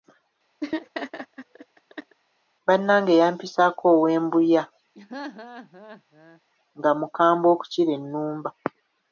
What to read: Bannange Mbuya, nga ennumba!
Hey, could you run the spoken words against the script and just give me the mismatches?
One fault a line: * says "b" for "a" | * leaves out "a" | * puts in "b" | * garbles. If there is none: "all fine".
* puts in "yampisaako ow'e"
* puts in "mukambwe okukira"